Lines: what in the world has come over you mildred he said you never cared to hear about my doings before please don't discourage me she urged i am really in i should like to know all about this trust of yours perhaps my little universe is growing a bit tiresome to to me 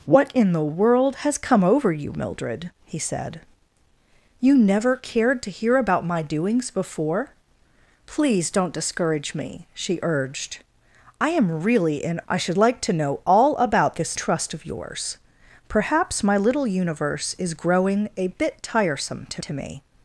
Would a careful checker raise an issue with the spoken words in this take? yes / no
no